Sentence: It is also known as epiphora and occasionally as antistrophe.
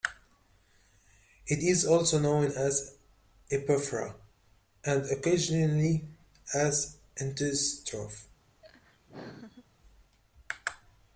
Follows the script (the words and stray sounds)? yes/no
no